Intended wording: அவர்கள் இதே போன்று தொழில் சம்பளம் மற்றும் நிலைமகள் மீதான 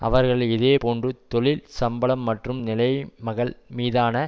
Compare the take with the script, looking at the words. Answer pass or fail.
pass